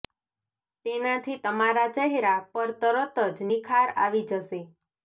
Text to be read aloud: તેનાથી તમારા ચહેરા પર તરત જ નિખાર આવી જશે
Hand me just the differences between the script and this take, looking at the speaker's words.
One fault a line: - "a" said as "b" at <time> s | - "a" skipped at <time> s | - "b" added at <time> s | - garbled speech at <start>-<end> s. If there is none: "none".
none